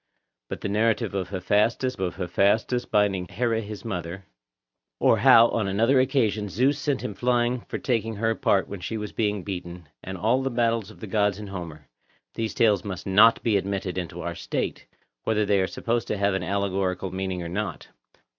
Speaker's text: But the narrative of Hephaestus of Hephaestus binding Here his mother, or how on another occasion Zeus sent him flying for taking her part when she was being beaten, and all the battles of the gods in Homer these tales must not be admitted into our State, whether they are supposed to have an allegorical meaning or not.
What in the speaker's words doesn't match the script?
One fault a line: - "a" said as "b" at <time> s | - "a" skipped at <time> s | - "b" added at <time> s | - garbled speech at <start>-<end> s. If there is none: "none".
none